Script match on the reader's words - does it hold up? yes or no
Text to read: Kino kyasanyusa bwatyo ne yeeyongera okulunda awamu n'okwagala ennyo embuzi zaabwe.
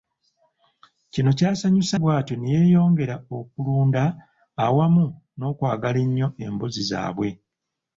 yes